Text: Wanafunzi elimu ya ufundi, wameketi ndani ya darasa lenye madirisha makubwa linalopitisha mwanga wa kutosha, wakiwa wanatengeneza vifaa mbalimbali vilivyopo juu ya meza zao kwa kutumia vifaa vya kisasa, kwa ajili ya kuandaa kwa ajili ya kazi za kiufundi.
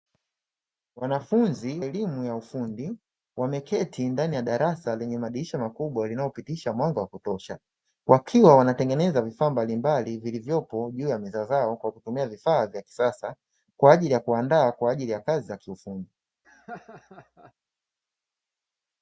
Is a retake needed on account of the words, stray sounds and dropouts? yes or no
yes